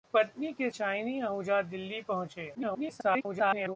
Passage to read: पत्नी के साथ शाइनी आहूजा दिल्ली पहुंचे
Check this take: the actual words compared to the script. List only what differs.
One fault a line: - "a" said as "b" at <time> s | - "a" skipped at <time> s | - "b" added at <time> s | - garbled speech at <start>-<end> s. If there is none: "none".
- "साथ" skipped at 0.7 s
- garbled speech at 2.5-3.8 s